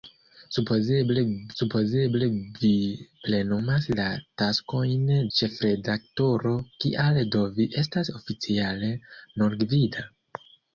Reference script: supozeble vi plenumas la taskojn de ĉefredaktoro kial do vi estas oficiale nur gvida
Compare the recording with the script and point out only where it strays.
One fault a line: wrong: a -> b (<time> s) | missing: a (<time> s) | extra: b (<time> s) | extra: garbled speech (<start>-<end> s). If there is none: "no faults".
extra: supozeble (1.6 s)
missing: de (5.0 s)